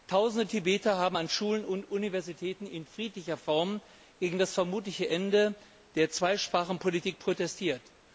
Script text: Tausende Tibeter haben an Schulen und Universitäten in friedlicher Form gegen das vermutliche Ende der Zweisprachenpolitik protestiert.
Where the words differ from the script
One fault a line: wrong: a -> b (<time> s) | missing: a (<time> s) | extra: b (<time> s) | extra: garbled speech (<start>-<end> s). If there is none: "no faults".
no faults